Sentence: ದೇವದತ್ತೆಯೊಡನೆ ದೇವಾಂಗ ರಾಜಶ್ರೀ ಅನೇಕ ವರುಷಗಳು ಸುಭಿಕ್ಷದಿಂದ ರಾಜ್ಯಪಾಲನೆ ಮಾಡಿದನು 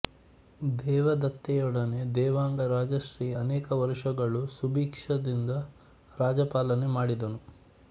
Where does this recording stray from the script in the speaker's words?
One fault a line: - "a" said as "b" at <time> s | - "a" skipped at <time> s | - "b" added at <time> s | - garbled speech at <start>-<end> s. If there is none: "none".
none